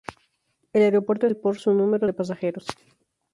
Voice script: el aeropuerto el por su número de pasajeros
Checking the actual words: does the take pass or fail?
pass